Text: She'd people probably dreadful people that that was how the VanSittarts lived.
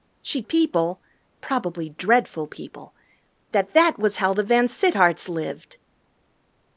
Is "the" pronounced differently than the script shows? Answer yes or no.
no